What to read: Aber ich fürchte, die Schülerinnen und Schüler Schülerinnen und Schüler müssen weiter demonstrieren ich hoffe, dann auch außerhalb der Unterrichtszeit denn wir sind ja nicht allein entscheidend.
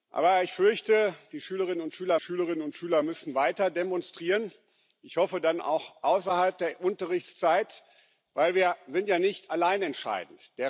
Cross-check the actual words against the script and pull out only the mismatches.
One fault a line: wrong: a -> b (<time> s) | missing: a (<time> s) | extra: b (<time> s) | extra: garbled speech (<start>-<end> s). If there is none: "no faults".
no faults